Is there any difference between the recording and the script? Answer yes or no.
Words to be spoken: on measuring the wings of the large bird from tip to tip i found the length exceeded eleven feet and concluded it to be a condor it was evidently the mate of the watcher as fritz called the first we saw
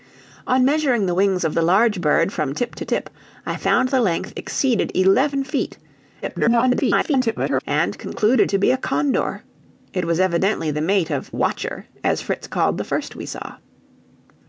yes